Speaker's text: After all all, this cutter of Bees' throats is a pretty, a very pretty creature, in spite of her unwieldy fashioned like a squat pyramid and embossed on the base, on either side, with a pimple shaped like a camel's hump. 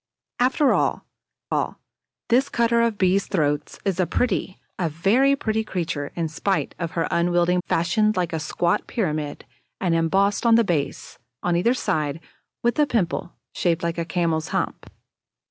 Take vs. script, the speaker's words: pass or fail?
pass